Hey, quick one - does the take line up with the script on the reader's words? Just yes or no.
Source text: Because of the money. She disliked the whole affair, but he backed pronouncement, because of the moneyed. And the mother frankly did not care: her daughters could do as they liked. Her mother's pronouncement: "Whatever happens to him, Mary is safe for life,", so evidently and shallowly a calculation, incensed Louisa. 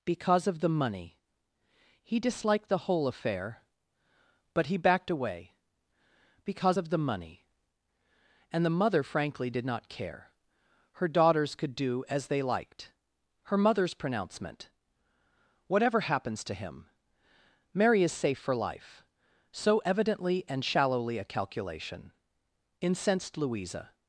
no